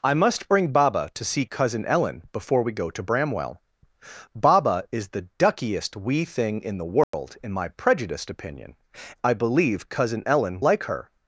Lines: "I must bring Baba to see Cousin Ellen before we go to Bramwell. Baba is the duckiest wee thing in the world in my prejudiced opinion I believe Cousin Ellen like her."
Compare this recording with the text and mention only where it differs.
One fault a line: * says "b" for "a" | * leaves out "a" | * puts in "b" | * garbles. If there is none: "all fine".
all fine